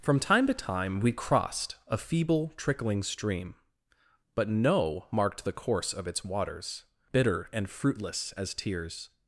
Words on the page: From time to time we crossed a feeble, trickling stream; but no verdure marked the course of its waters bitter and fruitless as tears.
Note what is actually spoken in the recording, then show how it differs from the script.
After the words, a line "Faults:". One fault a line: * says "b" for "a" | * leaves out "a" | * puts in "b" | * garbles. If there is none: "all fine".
From time to time we crossed a feeble, trickling stream; but no marked the course of its waters bitter and fruitless as tears.
Faults:
* leaves out "verdure"